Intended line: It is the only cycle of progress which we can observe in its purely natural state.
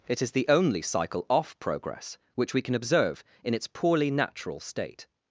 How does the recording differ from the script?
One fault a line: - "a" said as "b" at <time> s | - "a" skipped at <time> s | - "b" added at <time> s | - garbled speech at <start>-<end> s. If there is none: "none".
- "of" said as "off" at 1.3 s
- "purely" said as "poorly" at 3.7 s